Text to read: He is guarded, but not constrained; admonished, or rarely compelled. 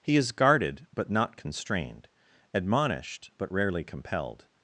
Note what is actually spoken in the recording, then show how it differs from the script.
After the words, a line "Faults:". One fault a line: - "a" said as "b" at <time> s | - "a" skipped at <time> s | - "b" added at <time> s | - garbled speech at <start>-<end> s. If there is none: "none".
He is guarded, but not constrained; admonished, but rarely compelled.
Faults:
- "or" said as "but" at 3.4 s